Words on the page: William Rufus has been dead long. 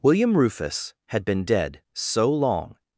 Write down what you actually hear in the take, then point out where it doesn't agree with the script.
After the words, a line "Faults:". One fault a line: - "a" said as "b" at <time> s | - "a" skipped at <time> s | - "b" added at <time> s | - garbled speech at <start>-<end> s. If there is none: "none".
William Rufus had been dead so long.
Faults:
- "has" said as "had" at 1.1 s
- "so" added at 1.9 s